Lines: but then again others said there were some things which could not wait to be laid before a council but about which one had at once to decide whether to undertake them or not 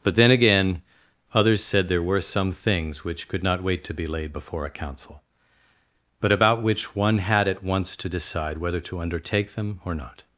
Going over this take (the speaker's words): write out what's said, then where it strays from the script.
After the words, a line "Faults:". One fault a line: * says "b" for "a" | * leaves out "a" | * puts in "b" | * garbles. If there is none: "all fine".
but then again others said there were some things which could not wait to be laid before a council but about which one had at once to decide whether to undertake them or not
Faults:
all fine